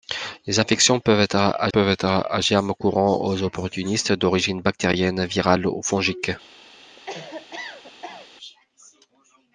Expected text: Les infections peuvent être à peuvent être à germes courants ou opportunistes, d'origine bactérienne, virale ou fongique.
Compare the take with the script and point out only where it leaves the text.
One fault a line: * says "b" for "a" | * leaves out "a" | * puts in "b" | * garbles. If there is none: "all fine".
all fine